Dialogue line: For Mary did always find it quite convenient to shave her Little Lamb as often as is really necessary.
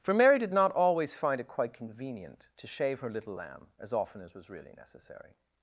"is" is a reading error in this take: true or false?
true